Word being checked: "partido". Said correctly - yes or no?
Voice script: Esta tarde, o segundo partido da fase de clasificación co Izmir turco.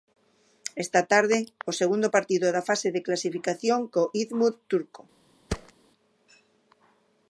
yes